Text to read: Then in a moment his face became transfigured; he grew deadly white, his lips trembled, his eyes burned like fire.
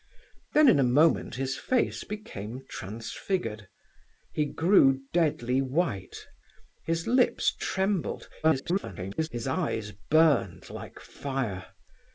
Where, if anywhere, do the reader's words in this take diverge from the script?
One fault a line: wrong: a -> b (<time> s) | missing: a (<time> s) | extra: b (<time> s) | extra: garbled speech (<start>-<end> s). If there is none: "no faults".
extra: garbled speech (8.4-9.3 s)